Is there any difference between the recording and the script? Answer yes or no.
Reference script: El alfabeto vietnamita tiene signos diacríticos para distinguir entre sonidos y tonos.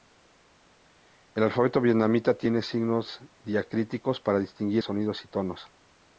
yes